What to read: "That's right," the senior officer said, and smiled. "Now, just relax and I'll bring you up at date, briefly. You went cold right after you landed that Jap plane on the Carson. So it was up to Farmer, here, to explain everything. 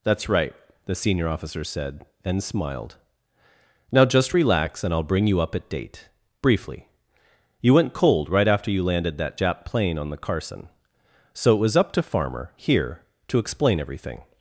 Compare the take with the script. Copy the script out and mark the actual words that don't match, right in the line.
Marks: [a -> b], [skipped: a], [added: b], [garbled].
"That's right," the senior officer said, and smiled. "Now, just relax and I'll bring you up at date, briefly. You went cold right after you landed that Jap plane on the Carson. So it was up to Farmer, here, to explain everything.